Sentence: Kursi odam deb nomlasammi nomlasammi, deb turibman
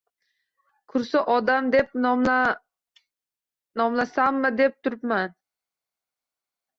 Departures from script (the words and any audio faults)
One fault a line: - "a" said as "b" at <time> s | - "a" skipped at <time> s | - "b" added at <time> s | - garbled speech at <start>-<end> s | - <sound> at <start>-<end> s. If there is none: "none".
- "nomlasammi" skipped at 4.5 s